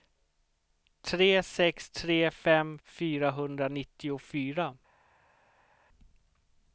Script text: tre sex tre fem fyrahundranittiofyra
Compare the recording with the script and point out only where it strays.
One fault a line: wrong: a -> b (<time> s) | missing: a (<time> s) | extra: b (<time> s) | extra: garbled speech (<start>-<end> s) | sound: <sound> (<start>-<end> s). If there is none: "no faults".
no faults